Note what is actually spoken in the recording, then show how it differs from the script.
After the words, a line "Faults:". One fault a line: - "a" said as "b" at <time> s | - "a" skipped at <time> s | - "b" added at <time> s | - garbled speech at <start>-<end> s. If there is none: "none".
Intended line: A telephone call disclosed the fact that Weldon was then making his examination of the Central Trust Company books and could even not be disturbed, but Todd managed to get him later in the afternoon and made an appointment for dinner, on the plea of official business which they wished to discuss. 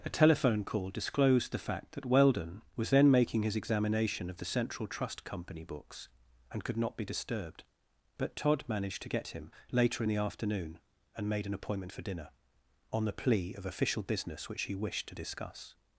A telephone call disclosed the fact that Weldon was then making his examination of the Central Trust Company books and could not be disturbed, but Todd managed to get him later in the afternoon and made an appointment for dinner, on the plea of official business which he wished to discuss.
Faults:
- "even" skipped at 6.8 s
- "they" said as "he" at 14.6 s